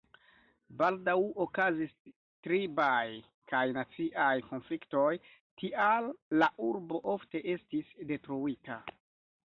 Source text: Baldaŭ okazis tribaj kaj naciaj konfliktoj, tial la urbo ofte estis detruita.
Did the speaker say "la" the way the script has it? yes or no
yes